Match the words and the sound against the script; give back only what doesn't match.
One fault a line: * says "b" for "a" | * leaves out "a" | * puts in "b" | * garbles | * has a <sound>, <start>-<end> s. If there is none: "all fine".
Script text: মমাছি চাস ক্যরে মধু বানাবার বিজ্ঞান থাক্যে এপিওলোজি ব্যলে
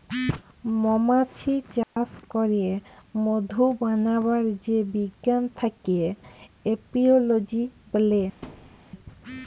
* has a dropout, 1.8-2.0 s
* puts in "যে"
* has a thud, 8.4-8.9 s